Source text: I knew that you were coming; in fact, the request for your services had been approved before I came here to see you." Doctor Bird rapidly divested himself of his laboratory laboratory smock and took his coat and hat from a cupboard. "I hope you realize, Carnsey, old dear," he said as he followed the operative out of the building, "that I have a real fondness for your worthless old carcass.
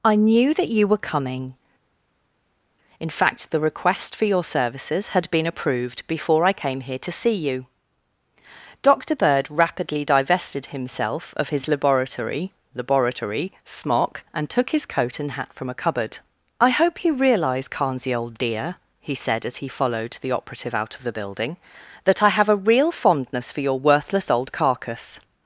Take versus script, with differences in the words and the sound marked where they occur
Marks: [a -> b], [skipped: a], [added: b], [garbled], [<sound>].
I knew that you were coming; in fact, the request for your services had been approved before I came here to see you." Doctor Bird rapidly divested himself of his laboratory laboratory smock and took his coat and hat from a cupboard. "I hope you realize, Carnsey, old dear," he said as he followed the operative out of the building, "that I have a real fondness for your worthless old carcass.